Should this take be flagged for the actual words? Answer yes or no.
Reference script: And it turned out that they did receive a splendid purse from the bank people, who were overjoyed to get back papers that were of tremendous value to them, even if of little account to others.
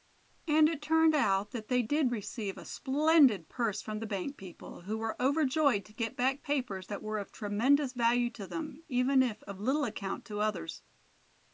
no